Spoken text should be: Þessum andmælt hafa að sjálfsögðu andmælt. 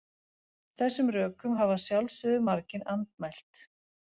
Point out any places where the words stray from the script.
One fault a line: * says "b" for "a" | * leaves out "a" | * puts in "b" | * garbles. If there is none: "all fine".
* says "rökum" for "andmælt"
* puts in "margir"